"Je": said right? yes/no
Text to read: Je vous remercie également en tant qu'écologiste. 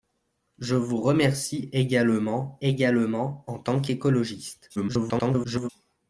yes